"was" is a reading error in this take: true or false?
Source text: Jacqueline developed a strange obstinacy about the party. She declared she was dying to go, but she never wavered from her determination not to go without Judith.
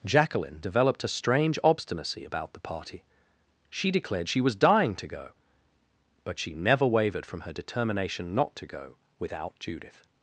false